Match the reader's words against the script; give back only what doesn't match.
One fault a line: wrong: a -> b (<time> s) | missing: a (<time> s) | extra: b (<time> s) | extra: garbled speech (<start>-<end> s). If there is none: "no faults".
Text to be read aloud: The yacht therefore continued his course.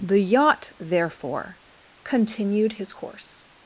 no faults